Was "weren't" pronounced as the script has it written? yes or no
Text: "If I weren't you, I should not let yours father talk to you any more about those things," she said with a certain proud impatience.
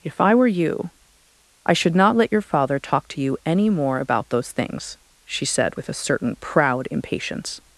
no